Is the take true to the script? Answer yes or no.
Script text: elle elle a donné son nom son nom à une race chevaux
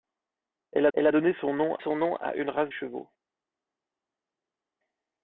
yes